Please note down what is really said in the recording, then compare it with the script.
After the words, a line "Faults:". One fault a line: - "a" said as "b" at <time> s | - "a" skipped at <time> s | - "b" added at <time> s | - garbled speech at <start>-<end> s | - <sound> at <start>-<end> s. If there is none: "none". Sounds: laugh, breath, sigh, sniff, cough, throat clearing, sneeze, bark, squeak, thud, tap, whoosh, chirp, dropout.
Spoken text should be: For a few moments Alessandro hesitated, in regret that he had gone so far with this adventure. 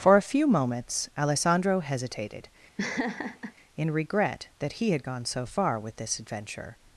For a few moments Alessandro hesitated, in regret that he had gone so far with this adventure.
Faults:
- laugh at 2.8-3.5 s